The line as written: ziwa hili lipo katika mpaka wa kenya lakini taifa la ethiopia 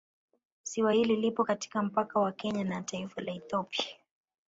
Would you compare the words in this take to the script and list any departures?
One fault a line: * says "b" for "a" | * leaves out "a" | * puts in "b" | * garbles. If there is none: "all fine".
* says "na" for "lakini"